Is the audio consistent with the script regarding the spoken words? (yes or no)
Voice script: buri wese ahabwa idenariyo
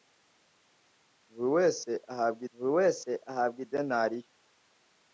no